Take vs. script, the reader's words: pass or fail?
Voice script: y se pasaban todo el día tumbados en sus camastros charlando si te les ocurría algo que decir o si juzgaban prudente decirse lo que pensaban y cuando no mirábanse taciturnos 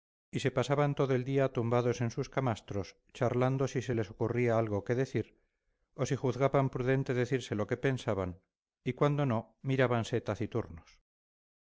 fail